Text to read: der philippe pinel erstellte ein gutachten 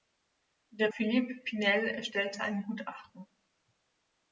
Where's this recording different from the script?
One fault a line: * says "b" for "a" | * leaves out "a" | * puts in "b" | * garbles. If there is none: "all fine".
all fine